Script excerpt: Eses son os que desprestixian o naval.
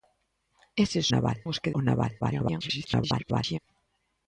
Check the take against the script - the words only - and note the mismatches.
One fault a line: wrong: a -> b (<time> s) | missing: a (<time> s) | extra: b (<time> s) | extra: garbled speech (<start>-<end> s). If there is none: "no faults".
wrong: son -> naval (1.1 s)
missing: desprestixian (1.7 s)
extra: garbled speech (2.2-3.6 s)